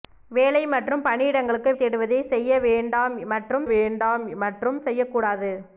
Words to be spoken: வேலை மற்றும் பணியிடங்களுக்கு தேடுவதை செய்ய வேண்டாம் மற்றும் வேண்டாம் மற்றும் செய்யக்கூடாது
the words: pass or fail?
pass